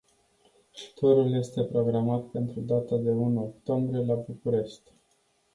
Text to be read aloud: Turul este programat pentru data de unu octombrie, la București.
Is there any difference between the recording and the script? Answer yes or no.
no